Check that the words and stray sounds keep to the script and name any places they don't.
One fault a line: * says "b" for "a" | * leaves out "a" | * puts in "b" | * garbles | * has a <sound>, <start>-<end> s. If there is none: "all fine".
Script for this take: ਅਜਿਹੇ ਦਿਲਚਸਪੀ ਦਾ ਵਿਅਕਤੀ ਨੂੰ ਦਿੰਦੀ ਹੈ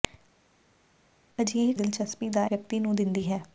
all fine